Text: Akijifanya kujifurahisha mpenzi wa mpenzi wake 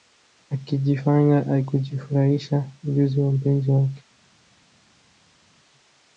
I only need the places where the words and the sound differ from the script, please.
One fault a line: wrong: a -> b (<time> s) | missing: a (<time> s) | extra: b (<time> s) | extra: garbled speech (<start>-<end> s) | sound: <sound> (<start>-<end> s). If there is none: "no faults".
wrong: mpenzi -> ujuzi (2.8 s)